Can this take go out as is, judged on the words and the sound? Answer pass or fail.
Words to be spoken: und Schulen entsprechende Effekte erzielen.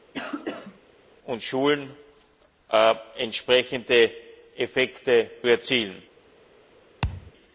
fail